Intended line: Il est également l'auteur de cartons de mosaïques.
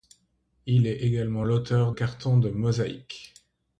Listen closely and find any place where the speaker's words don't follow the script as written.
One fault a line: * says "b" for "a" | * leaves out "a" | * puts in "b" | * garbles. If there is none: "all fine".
* leaves out "de"